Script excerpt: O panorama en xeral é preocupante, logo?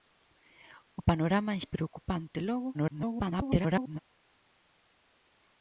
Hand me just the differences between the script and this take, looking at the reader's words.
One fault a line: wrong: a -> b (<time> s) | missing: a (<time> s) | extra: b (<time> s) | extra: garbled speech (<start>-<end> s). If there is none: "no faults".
missing: xeral (1.6 s)
extra: garbled speech (2.7-4.0 s)